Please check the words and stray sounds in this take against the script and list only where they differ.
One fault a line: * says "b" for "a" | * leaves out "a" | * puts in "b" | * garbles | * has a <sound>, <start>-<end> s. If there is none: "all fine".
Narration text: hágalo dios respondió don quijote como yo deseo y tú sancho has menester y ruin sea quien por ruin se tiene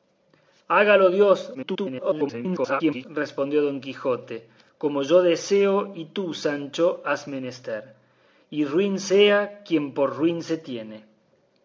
* garbles